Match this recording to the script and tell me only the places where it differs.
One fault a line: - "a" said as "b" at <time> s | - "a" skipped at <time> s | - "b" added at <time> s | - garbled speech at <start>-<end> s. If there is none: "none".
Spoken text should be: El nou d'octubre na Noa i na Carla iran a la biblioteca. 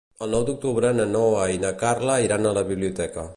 none